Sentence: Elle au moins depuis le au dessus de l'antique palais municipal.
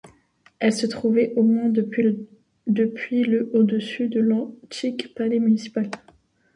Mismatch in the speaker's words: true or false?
true